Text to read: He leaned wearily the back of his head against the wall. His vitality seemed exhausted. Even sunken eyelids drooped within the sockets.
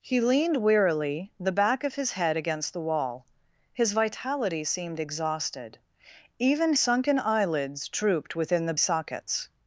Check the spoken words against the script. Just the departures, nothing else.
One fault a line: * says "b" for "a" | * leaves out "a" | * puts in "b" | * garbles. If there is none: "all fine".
all fine